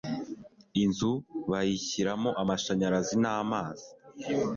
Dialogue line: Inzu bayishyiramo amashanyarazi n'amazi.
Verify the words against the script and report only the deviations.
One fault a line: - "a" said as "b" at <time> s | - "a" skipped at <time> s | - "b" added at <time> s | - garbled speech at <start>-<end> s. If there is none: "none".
none